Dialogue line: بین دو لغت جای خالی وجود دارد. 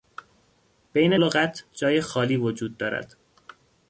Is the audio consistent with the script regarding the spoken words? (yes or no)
no